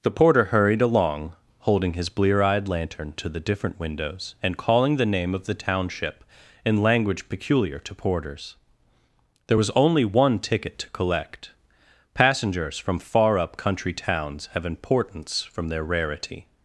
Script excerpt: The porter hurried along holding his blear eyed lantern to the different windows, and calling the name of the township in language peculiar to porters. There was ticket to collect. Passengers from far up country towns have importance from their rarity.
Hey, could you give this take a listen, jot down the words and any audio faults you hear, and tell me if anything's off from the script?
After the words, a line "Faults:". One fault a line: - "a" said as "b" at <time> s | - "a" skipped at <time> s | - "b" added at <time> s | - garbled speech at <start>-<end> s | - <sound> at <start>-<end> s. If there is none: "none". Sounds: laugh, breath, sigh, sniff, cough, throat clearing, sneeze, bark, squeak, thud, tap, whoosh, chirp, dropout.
The porter hurried along holding his blear eyed lantern to the different windows, and calling the name of the township in language peculiar to porters. There was only one ticket to collect. Passengers from far up country towns have importance from their rarity.
Faults:
- "only one" added at 9.7 s